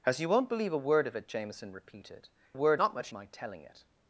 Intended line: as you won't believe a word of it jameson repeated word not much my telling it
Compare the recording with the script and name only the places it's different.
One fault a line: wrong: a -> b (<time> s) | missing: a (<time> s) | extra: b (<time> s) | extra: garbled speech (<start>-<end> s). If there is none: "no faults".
no faults